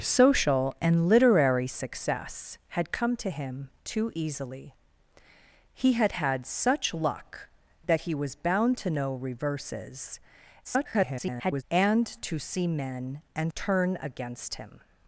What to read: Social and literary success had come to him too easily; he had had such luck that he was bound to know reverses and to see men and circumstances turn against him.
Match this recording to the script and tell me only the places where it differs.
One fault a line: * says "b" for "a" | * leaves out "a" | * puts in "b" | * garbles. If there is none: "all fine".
* garbles
* leaves out "circumstances"